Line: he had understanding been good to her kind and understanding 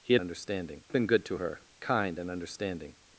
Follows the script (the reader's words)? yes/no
yes